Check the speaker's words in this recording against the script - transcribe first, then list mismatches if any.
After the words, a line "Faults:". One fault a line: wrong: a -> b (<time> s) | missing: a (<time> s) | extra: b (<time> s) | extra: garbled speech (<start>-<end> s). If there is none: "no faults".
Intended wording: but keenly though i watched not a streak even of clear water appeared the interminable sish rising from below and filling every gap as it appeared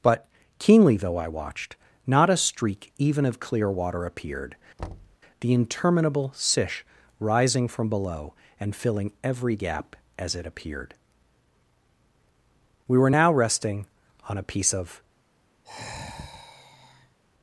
but keenly though i watched not a streak even of clear water appeared the interminable sish rising from below and filling every gap as it appeared we were now resting on a piece of
Faults:
extra: we were now resting on a piece of (12.9 s)